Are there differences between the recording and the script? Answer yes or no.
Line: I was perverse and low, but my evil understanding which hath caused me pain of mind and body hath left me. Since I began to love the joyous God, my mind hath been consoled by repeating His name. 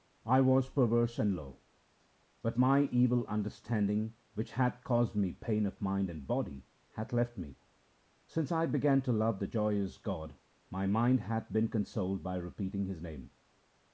no